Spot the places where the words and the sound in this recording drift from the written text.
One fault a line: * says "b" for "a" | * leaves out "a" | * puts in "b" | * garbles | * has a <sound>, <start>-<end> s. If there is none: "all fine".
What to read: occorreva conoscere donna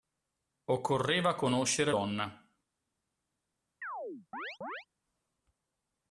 * has a chirp, 3.8-4.9 s